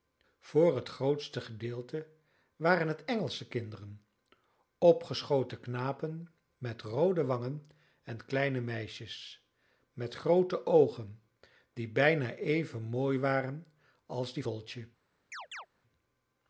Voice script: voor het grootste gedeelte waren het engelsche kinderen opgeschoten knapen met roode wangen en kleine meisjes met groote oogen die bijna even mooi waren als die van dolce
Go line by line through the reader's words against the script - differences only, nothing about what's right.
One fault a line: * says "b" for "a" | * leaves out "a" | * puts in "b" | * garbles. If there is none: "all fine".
* leaves out "van"